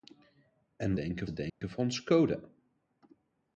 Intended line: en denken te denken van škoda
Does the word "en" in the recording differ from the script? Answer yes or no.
no